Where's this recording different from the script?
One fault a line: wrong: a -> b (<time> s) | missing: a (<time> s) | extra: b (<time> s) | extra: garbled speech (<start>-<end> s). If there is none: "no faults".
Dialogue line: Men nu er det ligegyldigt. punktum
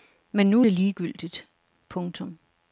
no faults